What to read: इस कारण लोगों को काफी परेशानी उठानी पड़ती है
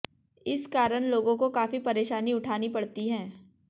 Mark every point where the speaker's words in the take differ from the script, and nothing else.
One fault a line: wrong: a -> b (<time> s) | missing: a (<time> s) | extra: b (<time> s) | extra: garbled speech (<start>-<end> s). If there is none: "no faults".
no faults